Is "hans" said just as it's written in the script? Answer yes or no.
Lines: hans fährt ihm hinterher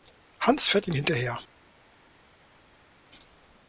yes